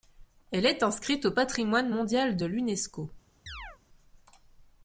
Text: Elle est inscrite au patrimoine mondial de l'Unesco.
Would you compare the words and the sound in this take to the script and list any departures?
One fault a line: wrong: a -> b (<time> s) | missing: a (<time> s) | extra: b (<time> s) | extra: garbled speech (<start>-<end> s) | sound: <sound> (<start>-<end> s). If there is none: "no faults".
sound: chirp (3.5-3.8 s)